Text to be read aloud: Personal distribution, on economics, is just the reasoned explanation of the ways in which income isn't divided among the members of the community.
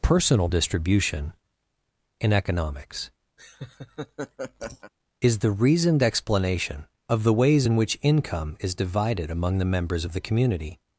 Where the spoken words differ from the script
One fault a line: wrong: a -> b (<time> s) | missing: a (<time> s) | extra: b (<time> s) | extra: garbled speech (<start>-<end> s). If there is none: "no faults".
wrong: on -> in (2.2 s)
missing: just (5.4 s)
wrong: isn't -> is (8.6 s)